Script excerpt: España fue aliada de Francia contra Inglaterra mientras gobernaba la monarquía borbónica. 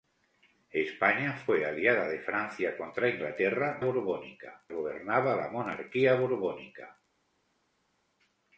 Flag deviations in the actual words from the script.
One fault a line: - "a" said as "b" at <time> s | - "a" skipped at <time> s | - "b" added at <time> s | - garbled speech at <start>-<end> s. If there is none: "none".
- "mientras" said as "borbónica" at 3.8 s